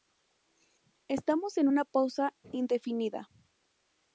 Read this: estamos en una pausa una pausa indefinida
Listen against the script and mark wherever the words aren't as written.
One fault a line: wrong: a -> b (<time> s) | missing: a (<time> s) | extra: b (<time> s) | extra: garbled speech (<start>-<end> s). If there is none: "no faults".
missing: una pausa (2.3 s)